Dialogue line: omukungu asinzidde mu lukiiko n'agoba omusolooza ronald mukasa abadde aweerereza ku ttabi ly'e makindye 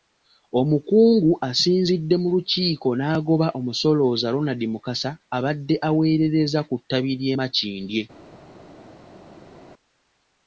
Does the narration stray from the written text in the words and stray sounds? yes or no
no